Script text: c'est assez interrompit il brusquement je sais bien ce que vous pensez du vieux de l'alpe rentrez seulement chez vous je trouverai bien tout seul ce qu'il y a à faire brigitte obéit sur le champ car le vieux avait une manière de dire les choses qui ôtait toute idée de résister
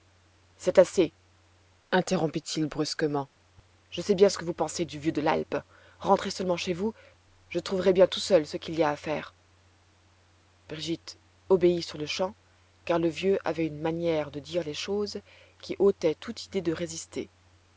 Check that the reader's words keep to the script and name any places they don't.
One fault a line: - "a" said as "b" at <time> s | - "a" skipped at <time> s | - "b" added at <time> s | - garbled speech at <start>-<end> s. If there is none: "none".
none